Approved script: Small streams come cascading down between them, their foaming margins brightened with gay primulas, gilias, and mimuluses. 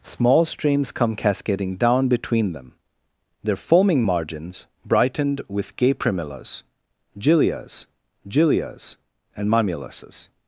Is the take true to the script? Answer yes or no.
no